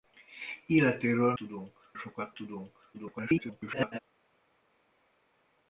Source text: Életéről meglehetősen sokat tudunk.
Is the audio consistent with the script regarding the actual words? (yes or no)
no